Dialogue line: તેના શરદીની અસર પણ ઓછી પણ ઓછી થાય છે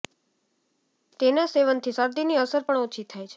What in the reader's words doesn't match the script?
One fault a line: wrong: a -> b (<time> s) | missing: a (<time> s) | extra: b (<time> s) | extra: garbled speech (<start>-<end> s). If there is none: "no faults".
extra: સેવનથી (1.5 s)
missing: પણ ઓછી (3.0 s)